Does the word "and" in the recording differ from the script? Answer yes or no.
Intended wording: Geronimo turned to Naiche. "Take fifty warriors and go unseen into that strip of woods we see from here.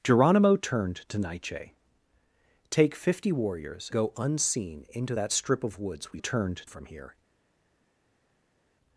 yes